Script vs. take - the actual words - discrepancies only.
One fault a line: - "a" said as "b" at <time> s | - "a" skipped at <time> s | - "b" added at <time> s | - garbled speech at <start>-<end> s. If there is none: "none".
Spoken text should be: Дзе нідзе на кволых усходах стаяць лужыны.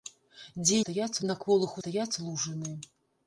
- "нідзе" said as "стаяць" at 0.8 s
- "усходах" skipped at 1.8 s